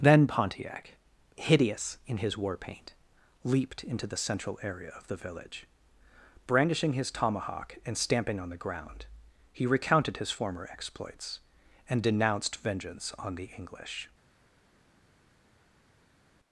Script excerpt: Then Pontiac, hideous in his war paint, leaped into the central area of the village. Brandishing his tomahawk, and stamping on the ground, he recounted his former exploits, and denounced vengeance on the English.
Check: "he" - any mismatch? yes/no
no